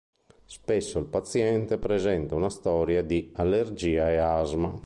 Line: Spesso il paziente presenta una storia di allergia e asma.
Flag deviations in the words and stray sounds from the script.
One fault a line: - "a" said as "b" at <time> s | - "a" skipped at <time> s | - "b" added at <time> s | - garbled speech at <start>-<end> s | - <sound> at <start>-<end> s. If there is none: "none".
none